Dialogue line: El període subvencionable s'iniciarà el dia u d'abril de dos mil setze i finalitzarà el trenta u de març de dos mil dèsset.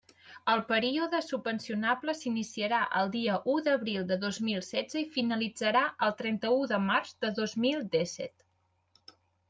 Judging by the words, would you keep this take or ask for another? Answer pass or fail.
pass